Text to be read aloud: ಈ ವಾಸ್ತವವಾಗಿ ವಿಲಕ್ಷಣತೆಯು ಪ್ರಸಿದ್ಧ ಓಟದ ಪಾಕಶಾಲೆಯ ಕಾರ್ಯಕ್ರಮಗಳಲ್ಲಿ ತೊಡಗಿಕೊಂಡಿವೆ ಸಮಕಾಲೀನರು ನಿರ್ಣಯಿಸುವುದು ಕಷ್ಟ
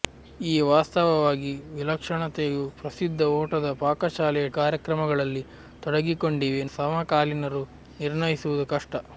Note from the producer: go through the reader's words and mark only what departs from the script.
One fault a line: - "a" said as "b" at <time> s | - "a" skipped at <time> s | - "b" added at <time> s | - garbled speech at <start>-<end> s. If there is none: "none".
none